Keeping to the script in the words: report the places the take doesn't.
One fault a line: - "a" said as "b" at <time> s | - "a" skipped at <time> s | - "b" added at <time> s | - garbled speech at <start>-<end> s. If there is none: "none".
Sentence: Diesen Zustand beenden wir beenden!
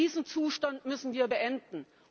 - "beenden" said as "müssen" at 0.8 s